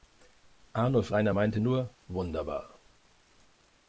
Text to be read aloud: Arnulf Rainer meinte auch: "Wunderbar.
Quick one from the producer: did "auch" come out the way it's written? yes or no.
no